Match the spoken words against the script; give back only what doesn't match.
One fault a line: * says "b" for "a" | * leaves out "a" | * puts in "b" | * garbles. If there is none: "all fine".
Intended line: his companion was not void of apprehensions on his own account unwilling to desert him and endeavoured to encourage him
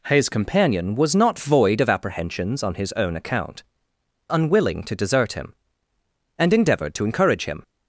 all fine